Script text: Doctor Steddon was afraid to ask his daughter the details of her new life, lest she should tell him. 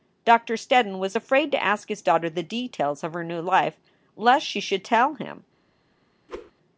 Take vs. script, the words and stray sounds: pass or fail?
fail